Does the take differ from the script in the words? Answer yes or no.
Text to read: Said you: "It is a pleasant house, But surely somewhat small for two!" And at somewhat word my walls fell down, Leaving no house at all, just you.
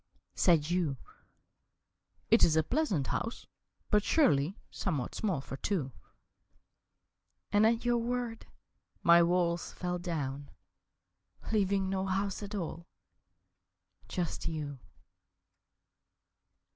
yes